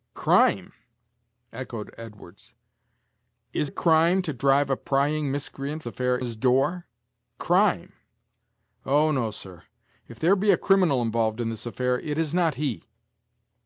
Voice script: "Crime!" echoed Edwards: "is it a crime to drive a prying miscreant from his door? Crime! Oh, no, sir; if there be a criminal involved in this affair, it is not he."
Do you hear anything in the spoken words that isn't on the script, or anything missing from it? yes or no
yes